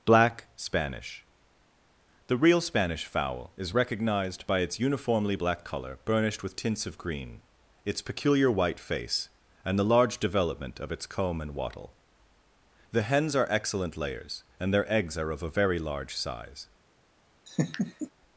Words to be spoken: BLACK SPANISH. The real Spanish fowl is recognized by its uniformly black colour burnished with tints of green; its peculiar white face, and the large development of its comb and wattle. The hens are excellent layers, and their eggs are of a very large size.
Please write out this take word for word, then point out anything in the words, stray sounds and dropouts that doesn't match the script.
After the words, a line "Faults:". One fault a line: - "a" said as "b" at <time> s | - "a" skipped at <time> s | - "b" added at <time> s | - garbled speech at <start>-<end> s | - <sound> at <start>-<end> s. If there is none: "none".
BLACK SPANISH. The real Spanish fowl is recognized by its uniformly black colour burnished with tints of green; its peculiar white face, and the large development of its comb and wattle. The hens are excellent layers, and their eggs are of a very large size.
Faults:
- laugh at 17.5-18.1 s